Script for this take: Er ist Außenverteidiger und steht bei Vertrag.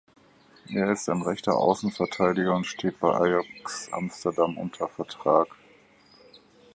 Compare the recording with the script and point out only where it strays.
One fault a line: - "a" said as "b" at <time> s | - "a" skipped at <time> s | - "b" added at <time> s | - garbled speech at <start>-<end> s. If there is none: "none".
- "ein rechter" added at 1.1 s
- "Ajax Amsterdam unter" added at 3.1 s